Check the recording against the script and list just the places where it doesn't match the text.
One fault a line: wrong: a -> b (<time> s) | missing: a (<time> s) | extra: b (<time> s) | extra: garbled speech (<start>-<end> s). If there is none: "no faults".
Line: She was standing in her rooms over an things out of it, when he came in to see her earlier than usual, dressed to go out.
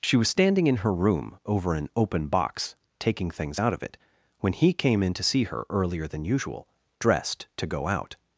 wrong: rooms -> room (0.9 s)
extra: open box taking (1.9 s)